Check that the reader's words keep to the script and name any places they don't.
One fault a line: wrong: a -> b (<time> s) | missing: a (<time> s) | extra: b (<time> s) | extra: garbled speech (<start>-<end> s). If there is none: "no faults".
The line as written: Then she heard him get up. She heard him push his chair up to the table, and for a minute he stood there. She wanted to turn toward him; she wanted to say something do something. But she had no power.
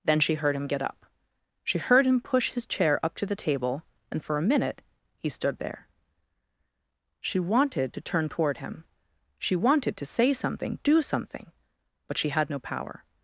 no faults